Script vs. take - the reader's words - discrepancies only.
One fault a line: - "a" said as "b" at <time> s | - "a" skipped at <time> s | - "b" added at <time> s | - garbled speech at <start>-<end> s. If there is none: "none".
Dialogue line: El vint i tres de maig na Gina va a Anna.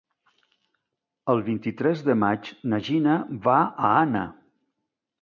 none